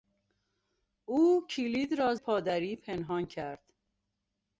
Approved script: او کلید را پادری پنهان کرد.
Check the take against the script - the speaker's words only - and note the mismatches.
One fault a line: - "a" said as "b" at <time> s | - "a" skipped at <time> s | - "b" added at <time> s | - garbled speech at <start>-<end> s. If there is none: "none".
none